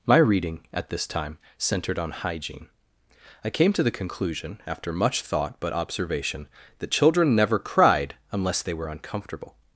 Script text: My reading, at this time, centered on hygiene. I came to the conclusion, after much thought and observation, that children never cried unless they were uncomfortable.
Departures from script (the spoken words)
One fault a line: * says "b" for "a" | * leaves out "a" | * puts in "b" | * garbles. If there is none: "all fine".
* says "but" for "and"